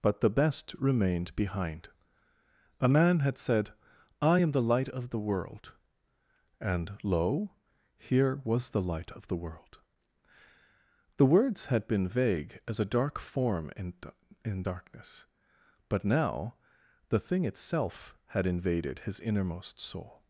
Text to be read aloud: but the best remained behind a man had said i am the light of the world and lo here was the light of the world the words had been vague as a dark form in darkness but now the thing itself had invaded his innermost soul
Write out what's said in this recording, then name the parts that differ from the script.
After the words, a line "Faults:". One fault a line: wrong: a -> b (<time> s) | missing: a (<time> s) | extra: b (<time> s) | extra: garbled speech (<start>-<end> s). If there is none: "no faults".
but the best remained behind a man had said i am the light of the world and lo here was the light of the world the words had been vague as a dark form in in darkness but now the thing itself had invaded his innermost soul
Faults:
extra: in (14.4 s)